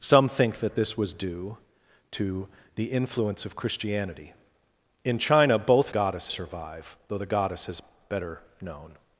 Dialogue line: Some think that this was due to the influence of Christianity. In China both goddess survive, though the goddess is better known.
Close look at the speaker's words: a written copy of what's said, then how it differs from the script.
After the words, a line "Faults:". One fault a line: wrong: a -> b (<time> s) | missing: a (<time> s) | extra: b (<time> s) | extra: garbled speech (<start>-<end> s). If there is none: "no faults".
Some think that this was due to the influence of Christianity. In China both goddess survive, though the goddess is better known.
Faults:
no faults